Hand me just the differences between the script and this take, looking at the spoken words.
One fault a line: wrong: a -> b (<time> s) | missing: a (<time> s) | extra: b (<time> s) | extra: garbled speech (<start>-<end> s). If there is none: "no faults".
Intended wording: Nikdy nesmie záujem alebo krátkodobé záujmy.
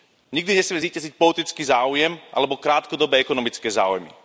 extra: zvíťaziť politický (0.8 s)
extra: ekonomické (3.2 s)